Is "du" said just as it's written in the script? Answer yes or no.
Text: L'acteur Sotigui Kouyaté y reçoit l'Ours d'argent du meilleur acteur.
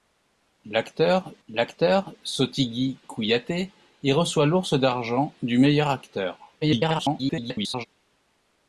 yes